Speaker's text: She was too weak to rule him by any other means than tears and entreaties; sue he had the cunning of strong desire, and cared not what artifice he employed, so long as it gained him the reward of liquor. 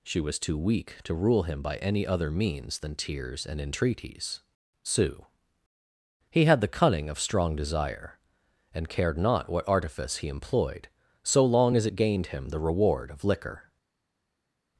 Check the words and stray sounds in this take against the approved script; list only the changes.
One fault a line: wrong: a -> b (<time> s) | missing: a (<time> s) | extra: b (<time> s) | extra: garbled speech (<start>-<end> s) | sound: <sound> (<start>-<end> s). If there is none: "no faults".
no faults